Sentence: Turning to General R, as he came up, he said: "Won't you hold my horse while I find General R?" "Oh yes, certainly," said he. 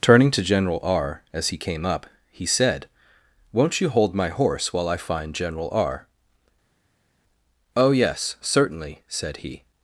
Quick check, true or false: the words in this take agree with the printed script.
true